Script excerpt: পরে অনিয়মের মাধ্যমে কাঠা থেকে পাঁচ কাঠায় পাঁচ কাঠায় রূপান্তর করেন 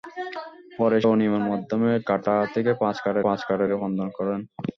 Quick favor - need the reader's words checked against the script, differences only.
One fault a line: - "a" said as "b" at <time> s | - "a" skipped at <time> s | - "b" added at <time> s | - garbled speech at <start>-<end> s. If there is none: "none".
none